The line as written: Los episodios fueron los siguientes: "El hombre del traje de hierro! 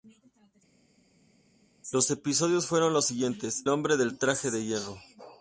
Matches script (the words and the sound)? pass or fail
fail